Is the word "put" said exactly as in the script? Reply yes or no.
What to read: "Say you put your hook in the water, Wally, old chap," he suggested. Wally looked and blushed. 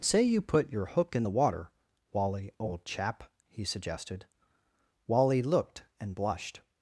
yes